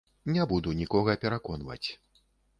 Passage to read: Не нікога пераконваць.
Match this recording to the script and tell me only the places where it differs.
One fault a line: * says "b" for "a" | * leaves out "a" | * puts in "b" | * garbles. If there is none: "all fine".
* puts in "буду"